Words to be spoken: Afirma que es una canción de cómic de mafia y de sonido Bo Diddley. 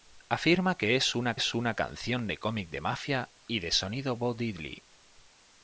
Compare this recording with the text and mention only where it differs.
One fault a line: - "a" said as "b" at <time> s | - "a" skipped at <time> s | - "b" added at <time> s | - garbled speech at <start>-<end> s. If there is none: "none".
- "es una" added at 1.3 s